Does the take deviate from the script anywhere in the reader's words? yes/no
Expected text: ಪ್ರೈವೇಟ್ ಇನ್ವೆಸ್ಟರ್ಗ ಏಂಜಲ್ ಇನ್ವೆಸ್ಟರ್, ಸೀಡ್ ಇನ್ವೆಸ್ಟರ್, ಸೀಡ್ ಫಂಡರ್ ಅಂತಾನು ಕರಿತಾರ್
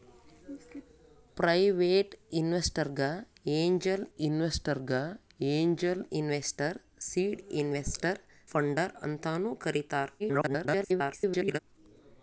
yes